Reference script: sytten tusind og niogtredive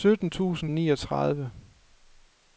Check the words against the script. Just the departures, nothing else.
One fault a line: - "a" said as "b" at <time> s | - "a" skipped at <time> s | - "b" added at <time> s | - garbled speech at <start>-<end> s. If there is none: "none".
none